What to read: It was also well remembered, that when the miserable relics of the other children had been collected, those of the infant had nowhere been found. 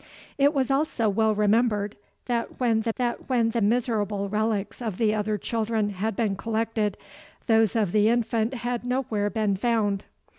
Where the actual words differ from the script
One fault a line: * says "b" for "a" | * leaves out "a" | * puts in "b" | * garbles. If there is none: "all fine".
* puts in "that when the"